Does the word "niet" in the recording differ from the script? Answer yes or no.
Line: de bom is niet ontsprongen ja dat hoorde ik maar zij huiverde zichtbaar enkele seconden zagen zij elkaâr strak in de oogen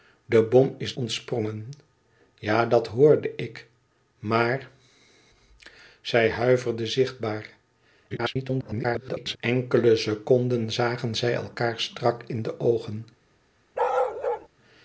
yes